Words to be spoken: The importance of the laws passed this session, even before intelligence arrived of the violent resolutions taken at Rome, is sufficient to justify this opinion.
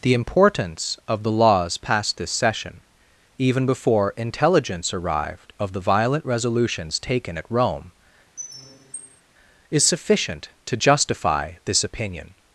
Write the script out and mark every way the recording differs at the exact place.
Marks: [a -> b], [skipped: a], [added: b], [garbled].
The importance of the laws passed this session, even before intelligence arrived of the violent resolutions taken at Rome, is sufficient to justify this opinion.